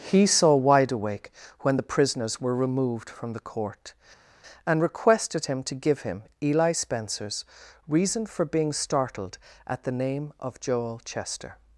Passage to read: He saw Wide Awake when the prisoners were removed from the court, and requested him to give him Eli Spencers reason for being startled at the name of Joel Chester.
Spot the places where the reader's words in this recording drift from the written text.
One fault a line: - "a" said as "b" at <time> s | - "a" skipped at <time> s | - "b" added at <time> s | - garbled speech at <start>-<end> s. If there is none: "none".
none